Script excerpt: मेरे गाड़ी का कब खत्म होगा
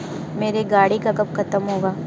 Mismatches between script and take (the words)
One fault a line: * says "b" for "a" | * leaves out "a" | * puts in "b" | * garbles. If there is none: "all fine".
all fine